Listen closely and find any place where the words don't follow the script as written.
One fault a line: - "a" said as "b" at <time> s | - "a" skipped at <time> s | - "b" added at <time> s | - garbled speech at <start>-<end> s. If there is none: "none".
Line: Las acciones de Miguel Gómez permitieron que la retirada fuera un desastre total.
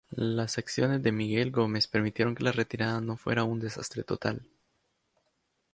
- "no" added at 3.0 s